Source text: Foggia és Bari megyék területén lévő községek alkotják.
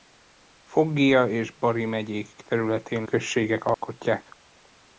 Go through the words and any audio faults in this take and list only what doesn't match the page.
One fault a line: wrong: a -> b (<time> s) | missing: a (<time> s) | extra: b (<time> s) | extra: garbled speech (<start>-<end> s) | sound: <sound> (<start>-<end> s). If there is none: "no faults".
missing: lévő (3.1 s)
sound: dropout (3.7-3.8 s)